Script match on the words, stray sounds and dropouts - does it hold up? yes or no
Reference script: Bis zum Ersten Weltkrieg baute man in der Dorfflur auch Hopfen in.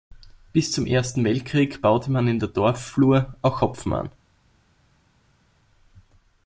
no